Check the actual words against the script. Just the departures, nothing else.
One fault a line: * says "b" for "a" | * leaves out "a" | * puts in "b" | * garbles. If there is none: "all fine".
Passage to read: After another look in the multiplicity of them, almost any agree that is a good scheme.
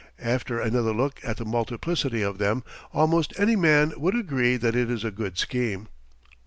* says "at" for "in"
* puts in "man would"
* puts in "it"